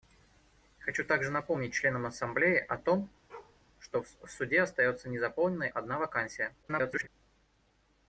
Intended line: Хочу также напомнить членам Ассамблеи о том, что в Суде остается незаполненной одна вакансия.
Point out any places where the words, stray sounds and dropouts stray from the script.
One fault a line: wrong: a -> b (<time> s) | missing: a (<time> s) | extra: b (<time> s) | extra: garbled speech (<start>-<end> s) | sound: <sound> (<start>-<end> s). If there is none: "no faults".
sound: bark (3.3-3.6 s)
extra: garbled speech (6.6-7.1 s)